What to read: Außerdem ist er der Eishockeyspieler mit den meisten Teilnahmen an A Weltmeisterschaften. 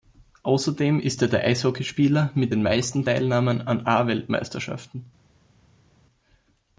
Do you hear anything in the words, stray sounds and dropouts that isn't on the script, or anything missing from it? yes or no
no